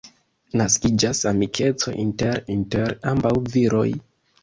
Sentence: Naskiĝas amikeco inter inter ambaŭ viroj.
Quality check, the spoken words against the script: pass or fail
pass